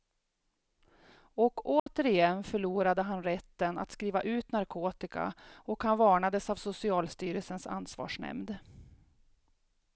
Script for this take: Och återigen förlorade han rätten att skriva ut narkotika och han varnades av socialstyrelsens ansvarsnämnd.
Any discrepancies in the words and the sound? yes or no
yes